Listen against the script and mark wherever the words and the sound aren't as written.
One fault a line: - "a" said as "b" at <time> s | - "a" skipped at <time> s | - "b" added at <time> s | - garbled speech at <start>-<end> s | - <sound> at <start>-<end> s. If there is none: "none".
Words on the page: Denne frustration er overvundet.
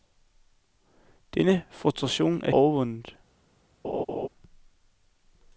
- laugh at 3.8-4.3 s